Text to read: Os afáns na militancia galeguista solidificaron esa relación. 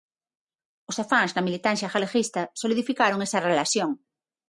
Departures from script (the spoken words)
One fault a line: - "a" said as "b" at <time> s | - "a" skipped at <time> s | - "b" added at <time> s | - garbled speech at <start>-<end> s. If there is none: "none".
none